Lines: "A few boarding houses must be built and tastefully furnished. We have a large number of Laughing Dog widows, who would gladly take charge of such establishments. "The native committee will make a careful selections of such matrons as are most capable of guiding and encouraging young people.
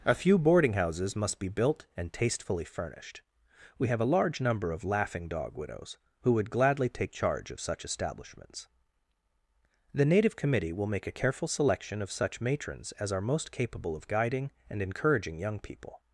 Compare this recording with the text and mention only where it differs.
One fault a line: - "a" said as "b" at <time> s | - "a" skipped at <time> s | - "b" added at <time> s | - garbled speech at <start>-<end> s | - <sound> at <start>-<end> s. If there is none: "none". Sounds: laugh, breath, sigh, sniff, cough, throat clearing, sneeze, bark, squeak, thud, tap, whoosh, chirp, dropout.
- "selections" said as "selection" at 11.5 s